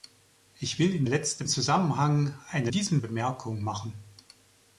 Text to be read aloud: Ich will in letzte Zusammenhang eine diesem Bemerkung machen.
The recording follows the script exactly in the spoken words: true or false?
true